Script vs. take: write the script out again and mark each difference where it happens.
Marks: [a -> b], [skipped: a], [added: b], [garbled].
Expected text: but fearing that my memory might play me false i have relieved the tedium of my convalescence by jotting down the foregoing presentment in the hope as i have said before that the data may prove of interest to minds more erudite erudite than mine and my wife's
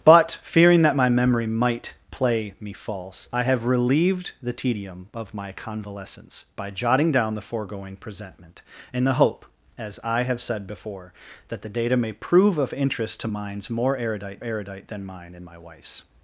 but fearing that my memory might play me false i have relieved the tedium of my convalescence by jotting down the foregoing presentment in the hope as i have said before that the data may prove of interest to minds more erudite erudite than mine and my wife's